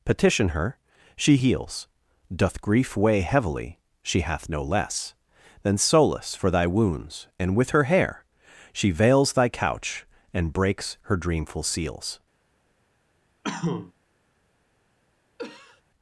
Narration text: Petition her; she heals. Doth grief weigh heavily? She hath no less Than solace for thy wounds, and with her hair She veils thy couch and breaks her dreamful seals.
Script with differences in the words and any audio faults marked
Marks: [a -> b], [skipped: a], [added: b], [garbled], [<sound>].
Petition her; she heals. Doth grief weigh heavily? She hath no less Than solace for thy wounds, and with her hair She veils thy couch and breaks her dreamful seals. [cough] [cough]